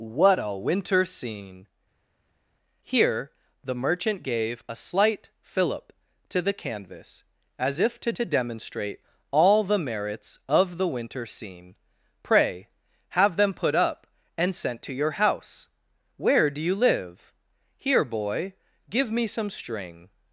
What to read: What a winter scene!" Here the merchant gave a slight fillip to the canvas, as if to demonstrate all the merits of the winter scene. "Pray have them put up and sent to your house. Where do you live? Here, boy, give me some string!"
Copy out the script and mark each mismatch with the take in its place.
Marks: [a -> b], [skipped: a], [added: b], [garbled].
What a winter scene!" Here the merchant gave a slight fillip to the canvas, as if to [added: to] demonstrate all the merits of the winter scene. "Pray have them put up and sent to your house. Where do you live? Here, boy, give me some string!"